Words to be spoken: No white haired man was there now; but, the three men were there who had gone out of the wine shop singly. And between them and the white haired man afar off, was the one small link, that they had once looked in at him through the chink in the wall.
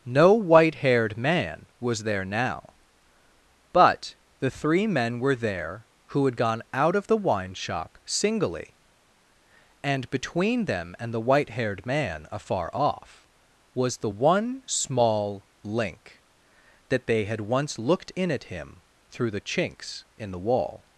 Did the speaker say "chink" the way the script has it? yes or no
no